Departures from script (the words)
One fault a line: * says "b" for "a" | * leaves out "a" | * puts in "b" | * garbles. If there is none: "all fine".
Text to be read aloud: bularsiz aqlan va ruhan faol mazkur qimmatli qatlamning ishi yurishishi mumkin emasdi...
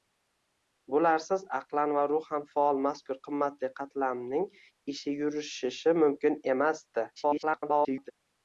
* garbles